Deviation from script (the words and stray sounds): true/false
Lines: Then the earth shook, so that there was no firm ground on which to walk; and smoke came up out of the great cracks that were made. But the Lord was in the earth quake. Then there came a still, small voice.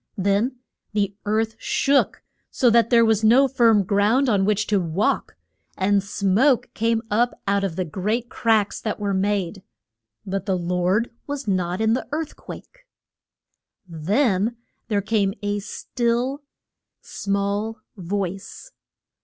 true